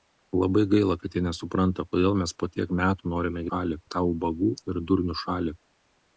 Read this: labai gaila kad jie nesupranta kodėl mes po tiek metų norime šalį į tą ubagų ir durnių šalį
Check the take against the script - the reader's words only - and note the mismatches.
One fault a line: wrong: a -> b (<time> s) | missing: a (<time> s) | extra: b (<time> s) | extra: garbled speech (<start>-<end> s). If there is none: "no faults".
no faults